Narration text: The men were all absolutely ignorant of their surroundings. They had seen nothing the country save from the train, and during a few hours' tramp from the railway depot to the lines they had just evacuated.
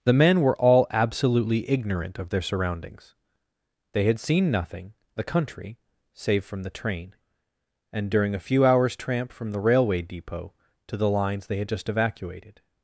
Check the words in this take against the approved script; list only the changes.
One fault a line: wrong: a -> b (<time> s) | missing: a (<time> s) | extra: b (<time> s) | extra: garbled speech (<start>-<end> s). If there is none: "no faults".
no faults